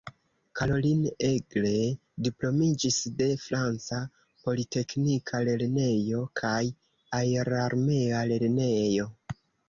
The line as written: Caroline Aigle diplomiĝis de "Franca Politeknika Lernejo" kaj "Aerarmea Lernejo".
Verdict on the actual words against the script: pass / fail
pass